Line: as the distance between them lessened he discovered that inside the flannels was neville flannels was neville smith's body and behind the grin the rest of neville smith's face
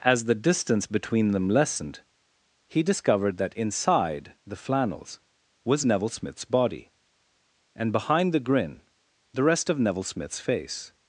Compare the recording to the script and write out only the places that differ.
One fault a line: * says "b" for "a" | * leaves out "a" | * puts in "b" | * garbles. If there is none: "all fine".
* leaves out "flannels was neville"